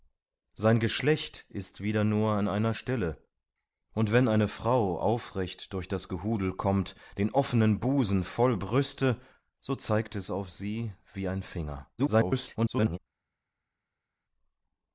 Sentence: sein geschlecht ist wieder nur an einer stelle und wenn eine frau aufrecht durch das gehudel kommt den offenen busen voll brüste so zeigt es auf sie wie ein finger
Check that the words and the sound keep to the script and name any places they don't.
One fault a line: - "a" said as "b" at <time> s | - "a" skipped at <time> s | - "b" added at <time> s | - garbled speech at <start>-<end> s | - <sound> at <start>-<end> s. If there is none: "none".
- garbled speech at 12.0-13.0 s